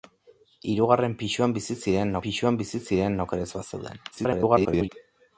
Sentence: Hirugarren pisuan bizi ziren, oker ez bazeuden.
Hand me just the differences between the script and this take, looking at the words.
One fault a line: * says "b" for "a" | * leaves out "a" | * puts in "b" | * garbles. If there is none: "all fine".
* puts in "pisuan bizi ziren"
* garbles